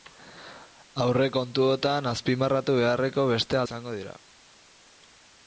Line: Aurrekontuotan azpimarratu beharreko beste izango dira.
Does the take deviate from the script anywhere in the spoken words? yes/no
no